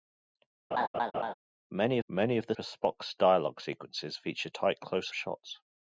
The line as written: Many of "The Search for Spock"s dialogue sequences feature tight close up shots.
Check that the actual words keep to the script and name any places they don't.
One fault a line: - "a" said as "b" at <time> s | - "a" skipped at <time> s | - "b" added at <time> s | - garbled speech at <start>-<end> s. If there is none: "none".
- "many" added at 2.1 s
- "Search" skipped at 2.5 s
- "up" skipped at 5.1 s